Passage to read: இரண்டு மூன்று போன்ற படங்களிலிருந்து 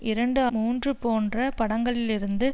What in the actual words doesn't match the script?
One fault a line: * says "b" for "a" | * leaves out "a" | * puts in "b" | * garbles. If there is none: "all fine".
all fine